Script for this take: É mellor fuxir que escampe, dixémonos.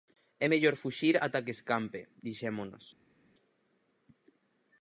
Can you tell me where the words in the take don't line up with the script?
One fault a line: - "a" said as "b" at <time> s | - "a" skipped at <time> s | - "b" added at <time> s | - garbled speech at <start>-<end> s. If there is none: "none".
- "ata" added at 1.2 s